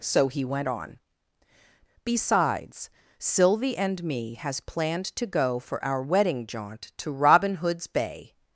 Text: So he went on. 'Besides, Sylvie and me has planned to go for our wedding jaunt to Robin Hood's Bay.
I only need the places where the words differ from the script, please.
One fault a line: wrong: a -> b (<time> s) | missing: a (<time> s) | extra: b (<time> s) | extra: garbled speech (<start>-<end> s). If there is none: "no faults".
no faults